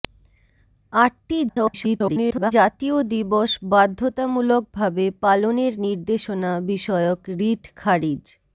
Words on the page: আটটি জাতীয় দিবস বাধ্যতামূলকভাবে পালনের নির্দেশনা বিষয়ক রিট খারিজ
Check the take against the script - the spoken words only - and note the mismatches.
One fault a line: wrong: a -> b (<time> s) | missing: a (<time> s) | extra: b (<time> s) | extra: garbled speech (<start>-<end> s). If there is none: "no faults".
extra: garbled speech (1.5-2.5 s)